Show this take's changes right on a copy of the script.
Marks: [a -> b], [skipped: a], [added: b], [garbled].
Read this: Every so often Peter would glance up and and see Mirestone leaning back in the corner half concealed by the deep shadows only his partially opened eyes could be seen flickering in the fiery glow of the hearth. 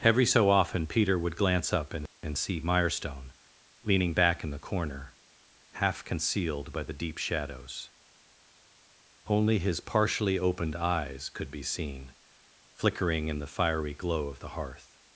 Every so often Peter would glance up and and see Mirestone leaning back in the corner half concealed by the deep shadows only his partially opened eyes could be seen flickering in the fiery glow of the hearth.